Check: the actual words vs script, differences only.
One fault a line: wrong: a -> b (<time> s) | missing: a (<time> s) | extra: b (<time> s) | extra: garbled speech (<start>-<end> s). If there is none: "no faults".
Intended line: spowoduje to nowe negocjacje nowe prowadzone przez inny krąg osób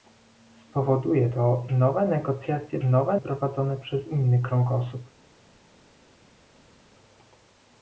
no faults